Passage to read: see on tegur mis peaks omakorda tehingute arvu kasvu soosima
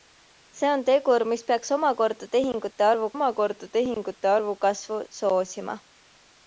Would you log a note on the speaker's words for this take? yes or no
yes